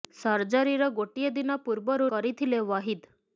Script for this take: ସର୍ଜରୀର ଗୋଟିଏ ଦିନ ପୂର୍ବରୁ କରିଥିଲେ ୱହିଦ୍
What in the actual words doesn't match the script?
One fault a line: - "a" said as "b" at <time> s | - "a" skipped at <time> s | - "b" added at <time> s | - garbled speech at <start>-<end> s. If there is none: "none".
none